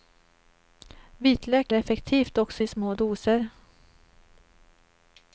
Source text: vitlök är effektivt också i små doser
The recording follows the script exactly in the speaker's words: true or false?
false